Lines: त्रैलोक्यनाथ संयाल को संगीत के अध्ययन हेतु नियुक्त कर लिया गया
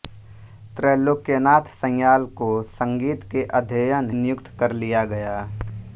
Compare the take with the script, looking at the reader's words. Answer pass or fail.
fail